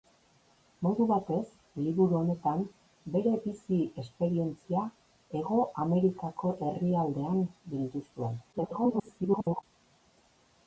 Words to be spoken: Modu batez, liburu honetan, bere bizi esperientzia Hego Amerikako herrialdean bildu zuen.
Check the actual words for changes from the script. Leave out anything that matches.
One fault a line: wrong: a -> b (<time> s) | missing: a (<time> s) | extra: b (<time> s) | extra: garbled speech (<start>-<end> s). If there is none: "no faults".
extra: garbled speech (8.5-9.6 s)